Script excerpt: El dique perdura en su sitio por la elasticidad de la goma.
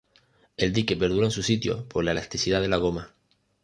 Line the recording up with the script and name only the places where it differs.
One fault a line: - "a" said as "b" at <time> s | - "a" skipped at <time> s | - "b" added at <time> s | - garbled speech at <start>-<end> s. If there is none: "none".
none